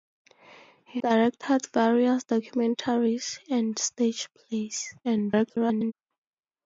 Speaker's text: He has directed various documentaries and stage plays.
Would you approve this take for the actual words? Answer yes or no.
no